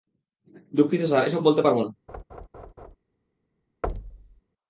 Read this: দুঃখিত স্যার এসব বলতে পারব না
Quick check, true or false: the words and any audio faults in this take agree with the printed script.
false